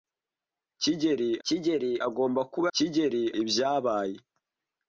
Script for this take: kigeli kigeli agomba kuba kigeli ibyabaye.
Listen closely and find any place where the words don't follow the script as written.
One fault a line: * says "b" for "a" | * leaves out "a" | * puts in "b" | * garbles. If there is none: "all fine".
all fine